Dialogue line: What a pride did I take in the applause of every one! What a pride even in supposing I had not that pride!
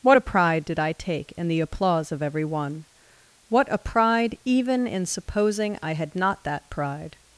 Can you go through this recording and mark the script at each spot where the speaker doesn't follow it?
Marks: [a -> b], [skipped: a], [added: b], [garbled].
What a pride did I take in the applause of every one! What a pride even in supposing I had not that pride!